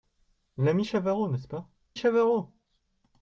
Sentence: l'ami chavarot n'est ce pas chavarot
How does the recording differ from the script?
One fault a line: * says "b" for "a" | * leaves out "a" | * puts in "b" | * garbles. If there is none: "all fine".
all fine